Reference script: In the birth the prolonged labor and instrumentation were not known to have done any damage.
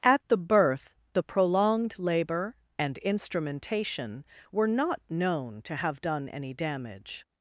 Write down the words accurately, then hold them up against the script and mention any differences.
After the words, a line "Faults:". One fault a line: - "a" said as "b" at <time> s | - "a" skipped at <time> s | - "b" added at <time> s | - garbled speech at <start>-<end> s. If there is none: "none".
At the birth the prolonged labor and instrumentation were not known to have done any damage.
Faults:
- "In" said as "At" at 0.0 s